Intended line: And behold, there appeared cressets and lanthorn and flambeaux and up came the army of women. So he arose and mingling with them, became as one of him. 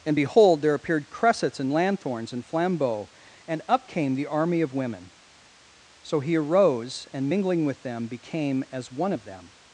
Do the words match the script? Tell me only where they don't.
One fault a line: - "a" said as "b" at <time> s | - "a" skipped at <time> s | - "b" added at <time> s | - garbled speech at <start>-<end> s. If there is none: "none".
- "lanthorn" said as "lanthorns" at 1.7 s
- "him" said as "them" at 9.2 s